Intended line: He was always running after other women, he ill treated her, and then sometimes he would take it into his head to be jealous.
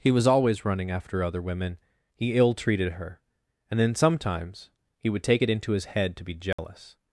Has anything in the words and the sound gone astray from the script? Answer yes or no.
yes